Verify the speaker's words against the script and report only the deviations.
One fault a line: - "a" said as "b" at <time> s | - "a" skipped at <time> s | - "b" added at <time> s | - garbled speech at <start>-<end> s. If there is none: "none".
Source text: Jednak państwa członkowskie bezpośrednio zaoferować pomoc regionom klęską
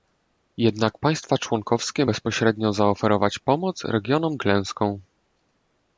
none